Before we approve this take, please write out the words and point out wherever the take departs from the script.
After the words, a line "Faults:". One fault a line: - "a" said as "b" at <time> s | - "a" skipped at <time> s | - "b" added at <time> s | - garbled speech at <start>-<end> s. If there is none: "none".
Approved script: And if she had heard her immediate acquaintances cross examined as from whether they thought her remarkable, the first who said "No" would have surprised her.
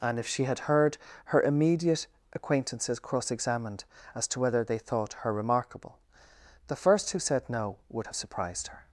And if she had heard her immediate acquaintances cross examined as to whether they thought her remarkable, the first who said "No" would have surprised her.
Faults:
- "from" said as "to" at 4.3 s